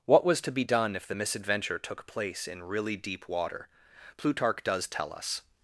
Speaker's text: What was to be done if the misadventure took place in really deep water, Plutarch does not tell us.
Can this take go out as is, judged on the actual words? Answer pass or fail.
fail